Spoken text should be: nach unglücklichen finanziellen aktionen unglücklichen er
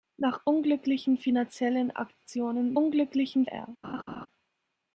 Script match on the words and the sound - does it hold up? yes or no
no